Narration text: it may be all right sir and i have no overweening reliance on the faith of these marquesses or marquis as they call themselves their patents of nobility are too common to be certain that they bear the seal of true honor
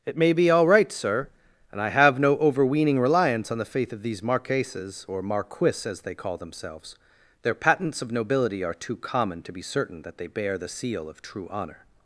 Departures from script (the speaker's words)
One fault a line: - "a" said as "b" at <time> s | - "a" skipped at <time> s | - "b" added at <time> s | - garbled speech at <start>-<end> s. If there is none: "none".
none